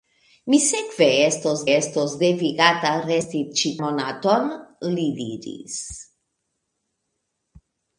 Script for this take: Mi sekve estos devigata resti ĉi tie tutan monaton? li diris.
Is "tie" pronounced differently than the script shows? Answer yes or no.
yes